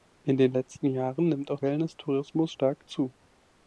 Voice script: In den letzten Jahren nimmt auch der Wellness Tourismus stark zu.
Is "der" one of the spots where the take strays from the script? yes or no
yes